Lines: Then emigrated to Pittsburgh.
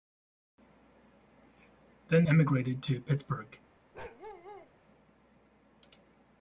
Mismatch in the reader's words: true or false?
false